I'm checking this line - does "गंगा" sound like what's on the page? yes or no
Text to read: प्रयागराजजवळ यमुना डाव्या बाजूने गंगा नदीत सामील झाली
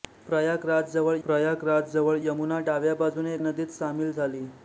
no